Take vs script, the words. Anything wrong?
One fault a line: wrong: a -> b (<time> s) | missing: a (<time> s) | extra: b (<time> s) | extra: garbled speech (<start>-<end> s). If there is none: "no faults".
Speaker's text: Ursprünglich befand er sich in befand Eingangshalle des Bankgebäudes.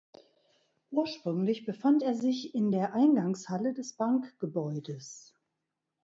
wrong: befand -> der (2.7 s)